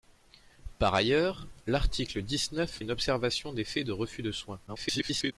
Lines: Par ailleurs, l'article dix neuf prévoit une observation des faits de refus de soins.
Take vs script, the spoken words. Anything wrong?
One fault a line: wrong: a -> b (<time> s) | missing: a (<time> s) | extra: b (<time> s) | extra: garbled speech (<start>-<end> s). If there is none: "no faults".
missing: prévoit (2.8 s)
extra: garbled speech (4.7-5.3 s)